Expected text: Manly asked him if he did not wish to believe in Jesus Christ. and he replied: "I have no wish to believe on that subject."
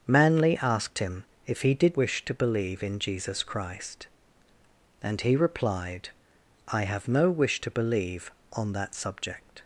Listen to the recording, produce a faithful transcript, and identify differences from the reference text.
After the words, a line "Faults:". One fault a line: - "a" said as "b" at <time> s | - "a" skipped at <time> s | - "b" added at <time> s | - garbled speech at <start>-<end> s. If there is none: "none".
Manly asked him if he did wish to believe in Jesus Christ. and he replied: "I have no wish to believe on that subject."
Faults:
- "not" skipped at 2.0 s